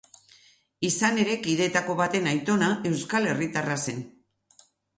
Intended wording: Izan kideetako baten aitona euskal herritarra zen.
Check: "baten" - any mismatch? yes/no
no